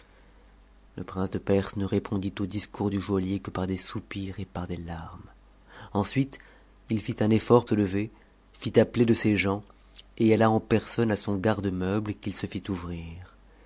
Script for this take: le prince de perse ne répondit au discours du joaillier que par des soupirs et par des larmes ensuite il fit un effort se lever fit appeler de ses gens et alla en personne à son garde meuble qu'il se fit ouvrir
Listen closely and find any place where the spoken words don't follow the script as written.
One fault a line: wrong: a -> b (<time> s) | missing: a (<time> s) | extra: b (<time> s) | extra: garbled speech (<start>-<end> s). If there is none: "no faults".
no faults